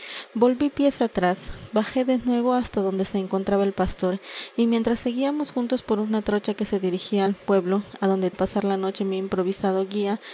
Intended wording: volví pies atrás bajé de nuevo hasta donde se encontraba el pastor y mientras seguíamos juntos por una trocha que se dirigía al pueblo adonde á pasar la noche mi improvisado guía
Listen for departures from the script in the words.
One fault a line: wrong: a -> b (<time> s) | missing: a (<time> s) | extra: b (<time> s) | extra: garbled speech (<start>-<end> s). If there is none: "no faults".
no faults